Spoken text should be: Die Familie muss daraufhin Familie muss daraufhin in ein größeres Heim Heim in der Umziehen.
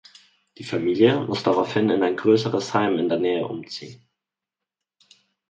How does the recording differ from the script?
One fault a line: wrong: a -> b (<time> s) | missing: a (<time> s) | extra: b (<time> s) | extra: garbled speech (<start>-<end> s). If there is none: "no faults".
missing: Familie muss daraufhin (1.9 s)
missing: Heim (3.0 s)
extra: Nähe (3.2 s)